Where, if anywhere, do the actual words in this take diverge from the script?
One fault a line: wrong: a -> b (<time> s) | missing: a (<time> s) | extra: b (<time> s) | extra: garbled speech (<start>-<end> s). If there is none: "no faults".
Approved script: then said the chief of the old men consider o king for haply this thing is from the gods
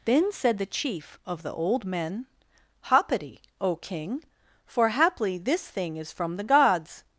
wrong: consider -> hoppity (2.9 s)